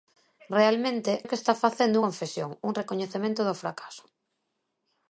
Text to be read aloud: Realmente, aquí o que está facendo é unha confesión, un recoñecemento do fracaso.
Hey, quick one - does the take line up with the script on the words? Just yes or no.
no